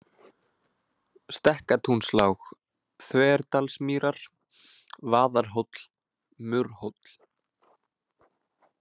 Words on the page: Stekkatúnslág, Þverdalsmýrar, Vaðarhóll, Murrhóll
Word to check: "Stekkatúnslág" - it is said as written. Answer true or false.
true